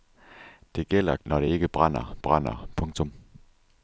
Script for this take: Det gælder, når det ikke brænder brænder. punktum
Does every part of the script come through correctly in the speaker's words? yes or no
yes